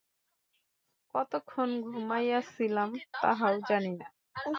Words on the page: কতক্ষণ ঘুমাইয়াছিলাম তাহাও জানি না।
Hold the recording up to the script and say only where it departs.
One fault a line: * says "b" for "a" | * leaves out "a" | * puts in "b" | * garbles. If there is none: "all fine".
all fine